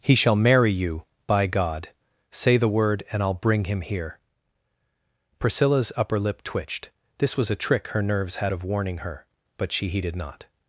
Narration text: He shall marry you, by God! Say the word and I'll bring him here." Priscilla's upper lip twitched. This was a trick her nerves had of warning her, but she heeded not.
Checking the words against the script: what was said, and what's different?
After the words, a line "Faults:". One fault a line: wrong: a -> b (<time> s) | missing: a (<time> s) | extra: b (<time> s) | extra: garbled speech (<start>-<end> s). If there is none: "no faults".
He shall marry you, by God! Say the word and I'll bring him here." Priscilla's upper lip twitched. This was a trick her nerves had of warning her, but she heeded not.
Faults:
no faults